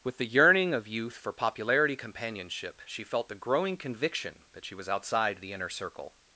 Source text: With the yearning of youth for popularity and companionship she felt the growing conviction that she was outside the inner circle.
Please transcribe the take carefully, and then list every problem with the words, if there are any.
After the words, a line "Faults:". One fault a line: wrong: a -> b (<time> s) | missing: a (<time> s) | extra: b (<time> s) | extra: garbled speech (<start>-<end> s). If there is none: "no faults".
With the yearning of youth for popularity companionship she felt the growing conviction that she was outside the inner circle.
Faults:
missing: and (2.0 s)